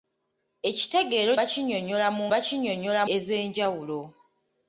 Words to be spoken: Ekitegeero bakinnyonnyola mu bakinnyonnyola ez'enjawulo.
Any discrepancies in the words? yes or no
no